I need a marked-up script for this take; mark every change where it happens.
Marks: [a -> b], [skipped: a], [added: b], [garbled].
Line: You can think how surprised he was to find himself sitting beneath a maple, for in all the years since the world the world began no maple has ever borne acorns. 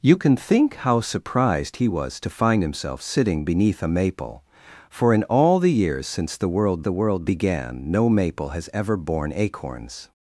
You can think how surprised he was to find himself sitting beneath a maple, for in all the years since the world the world began no maple has ever borne acorns.